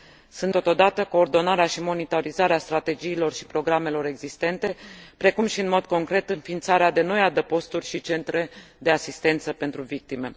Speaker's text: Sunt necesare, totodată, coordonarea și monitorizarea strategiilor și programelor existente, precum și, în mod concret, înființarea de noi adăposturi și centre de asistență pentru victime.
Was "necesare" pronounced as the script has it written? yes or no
no